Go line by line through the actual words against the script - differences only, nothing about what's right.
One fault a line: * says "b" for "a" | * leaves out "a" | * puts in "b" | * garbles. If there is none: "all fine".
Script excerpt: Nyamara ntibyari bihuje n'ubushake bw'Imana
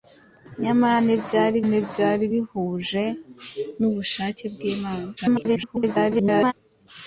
* puts in "ntibyari"
* garbles